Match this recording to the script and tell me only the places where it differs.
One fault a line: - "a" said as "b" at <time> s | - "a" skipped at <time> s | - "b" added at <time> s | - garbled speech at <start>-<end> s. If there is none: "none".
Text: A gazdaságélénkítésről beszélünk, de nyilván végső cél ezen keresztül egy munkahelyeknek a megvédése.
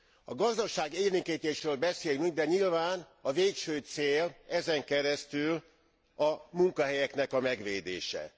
- "a" added at 3.2 s
- "egy" said as "a" at 6.2 s